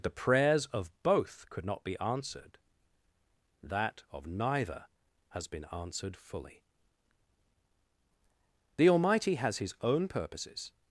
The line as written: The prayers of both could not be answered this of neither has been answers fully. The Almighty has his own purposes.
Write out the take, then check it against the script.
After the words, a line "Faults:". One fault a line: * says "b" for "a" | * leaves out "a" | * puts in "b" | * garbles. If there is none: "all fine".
The prayers of both could not be answered that of neither has been answered fully. The Almighty has his own purposes.
Faults:
* says "that" for "this"
* says "answered" for "answers"